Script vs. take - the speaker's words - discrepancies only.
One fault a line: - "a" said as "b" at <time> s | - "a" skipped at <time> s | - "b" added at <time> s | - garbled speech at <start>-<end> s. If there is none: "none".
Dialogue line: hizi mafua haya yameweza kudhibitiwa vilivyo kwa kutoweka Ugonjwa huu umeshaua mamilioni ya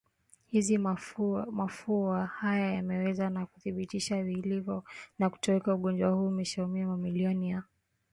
- "na" added at 3.3 s
- "kwa" said as "na" at 5.2 s